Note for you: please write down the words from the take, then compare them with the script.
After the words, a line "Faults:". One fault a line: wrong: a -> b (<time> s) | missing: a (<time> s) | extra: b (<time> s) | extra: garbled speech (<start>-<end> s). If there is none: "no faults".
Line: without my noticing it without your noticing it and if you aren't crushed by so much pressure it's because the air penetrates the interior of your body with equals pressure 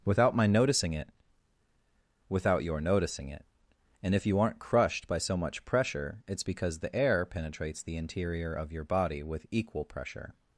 without my noticing it without your noticing it and if you aren't crushed by so much pressure it's because the air penetrates the interior of your body with equal pressure
Faults:
wrong: equals -> equal (9.5 s)